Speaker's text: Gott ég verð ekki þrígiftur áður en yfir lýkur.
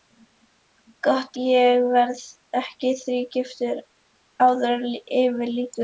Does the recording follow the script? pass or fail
pass